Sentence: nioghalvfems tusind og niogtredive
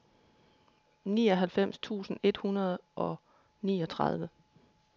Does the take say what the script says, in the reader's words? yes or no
no